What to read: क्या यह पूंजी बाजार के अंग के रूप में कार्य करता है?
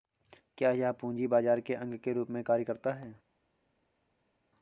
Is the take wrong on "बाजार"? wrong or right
right